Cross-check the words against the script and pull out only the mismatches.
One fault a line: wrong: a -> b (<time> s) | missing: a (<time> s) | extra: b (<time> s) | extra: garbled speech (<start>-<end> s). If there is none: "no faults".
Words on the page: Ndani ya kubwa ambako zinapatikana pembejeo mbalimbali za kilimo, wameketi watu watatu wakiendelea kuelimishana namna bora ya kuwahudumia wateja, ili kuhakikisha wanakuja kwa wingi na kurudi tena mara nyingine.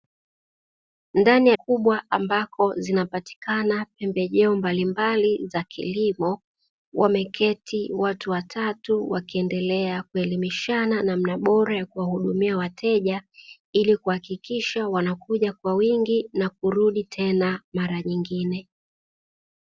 no faults